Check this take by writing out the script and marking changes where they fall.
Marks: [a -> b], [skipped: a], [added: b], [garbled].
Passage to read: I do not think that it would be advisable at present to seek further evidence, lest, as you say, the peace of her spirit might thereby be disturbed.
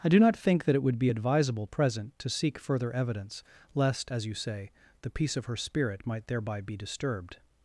I do not think that it would be advisable [skipped: at] present to seek further evidence, lest, as you say, the peace of her spirit might thereby be disturbed.